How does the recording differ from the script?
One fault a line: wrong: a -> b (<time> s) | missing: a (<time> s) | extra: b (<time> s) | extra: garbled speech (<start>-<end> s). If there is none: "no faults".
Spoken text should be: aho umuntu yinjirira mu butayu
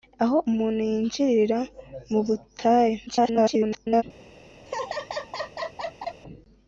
extra: garbled speech (3.1-4.0 s)